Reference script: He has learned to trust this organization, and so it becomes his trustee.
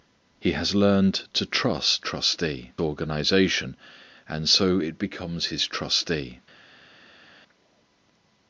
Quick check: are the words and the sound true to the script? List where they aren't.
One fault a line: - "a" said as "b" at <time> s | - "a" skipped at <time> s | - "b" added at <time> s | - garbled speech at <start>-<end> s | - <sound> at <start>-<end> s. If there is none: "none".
- "this" said as "trustee" at 2.0 s